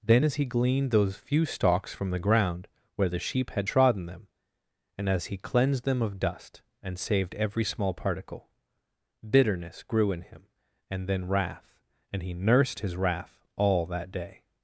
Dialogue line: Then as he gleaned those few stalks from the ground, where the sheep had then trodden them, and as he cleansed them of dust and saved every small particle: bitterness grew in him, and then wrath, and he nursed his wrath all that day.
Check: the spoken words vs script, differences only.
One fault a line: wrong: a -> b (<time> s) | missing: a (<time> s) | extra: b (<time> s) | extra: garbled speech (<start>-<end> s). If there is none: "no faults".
missing: then (3.7 s)